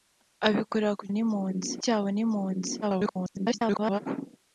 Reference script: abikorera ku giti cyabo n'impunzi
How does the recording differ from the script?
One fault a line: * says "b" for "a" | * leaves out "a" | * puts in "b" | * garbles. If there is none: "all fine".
* says "n'impunzi" for "giti"
* garbles